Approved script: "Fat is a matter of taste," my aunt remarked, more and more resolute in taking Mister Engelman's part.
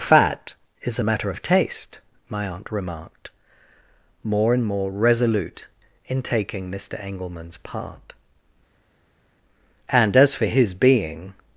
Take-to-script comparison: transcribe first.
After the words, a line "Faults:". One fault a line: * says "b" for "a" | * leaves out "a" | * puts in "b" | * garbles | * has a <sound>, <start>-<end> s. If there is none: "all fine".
"Fat is a matter of taste," my aunt remarked, more and more resolute in taking Mister Engelman's part. "And as for his being
Faults:
* puts in "And as for his being"